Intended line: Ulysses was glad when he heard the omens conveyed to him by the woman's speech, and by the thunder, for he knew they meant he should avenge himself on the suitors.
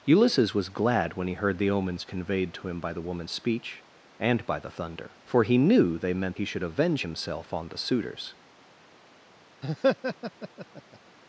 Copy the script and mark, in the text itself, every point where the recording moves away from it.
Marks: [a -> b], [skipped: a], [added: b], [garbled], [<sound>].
Ulysses was glad when he heard the omens conveyed to him by the woman's speech, and by the thunder, for he knew they meant he should avenge himself on the suitors. [laugh]